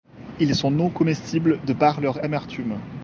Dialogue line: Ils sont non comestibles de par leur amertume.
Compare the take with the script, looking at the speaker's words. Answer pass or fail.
pass